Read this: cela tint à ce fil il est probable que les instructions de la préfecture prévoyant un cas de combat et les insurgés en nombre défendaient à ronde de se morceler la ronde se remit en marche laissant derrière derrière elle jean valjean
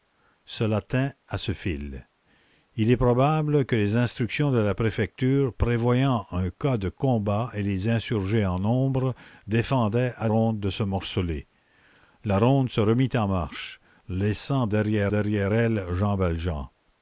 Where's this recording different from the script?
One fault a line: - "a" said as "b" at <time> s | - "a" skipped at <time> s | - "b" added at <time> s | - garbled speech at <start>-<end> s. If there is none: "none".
none